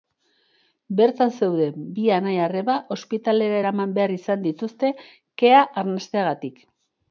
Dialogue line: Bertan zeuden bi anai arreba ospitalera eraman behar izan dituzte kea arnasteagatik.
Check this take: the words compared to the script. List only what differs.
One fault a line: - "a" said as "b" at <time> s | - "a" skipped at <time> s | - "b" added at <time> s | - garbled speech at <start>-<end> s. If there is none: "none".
none